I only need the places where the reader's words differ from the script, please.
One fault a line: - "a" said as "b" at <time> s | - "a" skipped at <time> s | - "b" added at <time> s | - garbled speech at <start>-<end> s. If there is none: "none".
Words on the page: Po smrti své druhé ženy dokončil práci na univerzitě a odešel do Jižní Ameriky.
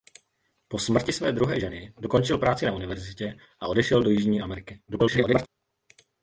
- garbled speech at 4.9-5.5 s